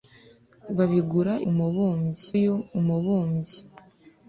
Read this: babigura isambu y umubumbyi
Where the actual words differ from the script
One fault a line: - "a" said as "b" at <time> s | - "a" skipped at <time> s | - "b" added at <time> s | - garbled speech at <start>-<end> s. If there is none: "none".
- "isambu" said as "umubumbyi" at 1.5 s